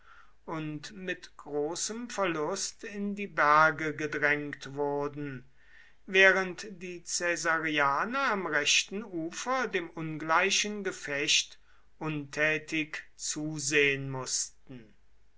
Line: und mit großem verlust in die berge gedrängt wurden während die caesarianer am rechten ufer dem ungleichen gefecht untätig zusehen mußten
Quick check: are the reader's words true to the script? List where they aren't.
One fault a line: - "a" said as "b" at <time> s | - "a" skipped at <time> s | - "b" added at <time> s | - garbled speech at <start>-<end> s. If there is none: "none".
none